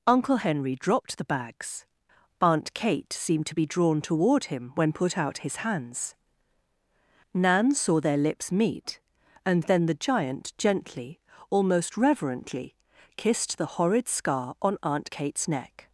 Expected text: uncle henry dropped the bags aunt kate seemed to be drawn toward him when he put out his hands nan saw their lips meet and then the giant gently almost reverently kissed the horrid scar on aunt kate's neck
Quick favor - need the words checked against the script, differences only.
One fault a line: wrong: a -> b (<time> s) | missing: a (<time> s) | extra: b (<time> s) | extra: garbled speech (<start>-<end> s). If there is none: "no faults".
missing: he (4.9 s)